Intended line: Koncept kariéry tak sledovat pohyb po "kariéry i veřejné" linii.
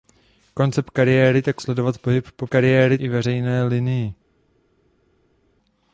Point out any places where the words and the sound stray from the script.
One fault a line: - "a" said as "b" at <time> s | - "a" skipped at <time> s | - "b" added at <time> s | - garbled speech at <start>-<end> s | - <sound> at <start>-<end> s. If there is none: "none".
none